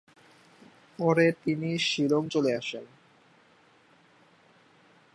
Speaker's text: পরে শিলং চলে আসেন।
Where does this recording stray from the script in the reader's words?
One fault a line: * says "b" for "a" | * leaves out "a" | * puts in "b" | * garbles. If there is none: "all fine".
* puts in "তিনি"